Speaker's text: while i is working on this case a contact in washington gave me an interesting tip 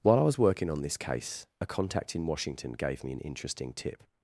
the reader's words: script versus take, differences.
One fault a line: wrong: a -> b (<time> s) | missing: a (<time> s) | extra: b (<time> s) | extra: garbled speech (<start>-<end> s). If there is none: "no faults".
wrong: is -> was (0.2 s)